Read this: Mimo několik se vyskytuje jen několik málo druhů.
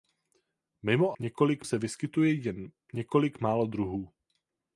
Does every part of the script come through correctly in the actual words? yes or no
yes